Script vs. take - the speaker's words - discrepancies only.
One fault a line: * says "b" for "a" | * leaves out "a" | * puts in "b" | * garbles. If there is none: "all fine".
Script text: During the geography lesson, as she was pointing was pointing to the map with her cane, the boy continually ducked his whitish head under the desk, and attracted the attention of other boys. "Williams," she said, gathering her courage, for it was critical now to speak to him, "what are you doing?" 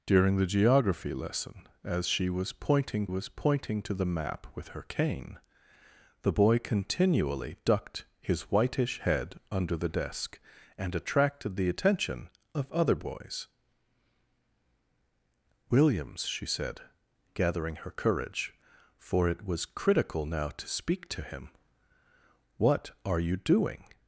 all fine